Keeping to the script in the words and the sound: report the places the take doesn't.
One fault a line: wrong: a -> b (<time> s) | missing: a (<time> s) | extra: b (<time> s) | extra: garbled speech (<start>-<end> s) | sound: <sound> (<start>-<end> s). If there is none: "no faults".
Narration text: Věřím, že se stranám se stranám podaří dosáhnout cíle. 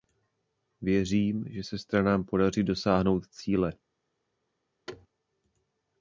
missing: se stranám (2.2 s)
sound: thud (4.9-5.1 s)